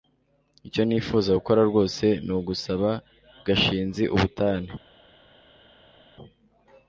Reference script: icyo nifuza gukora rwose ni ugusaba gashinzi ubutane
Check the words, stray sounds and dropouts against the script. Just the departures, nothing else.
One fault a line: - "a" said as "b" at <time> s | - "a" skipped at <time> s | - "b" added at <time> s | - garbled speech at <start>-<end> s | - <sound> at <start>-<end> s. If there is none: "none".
none